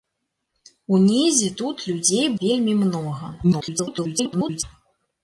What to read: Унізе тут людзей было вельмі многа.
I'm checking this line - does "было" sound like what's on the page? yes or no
no